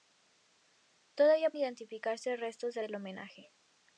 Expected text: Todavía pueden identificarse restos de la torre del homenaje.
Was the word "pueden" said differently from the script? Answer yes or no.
yes